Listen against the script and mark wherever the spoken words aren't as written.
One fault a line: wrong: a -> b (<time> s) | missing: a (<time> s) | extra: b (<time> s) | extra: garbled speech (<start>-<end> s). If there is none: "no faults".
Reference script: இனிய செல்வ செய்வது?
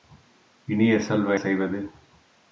no faults